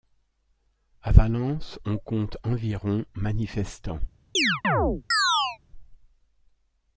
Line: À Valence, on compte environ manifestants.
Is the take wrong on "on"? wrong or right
right